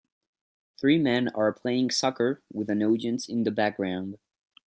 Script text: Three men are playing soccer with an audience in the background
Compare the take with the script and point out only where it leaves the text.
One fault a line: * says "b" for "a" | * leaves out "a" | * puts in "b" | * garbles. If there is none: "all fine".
all fine